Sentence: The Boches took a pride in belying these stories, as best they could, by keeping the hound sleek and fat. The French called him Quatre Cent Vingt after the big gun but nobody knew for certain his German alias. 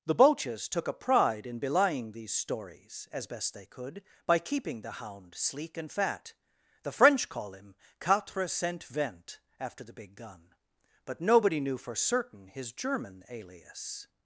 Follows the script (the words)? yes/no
no